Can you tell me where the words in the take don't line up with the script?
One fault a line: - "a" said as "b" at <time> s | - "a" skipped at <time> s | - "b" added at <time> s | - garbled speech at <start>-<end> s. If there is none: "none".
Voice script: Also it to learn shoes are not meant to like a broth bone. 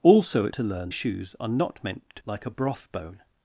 none